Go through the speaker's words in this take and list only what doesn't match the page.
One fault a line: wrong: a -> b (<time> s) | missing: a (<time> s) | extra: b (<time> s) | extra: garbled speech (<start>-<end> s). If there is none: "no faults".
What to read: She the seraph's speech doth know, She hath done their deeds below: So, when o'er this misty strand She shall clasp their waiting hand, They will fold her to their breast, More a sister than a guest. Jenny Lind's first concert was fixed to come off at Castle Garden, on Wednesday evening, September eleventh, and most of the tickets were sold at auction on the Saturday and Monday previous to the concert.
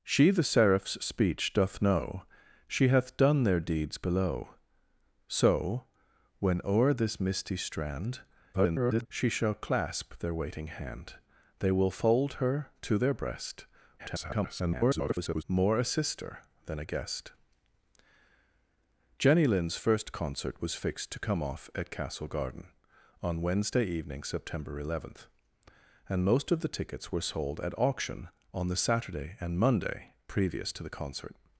extra: garbled speech (8.5-9.1 s)
extra: garbled speech (14.0-15.4 s)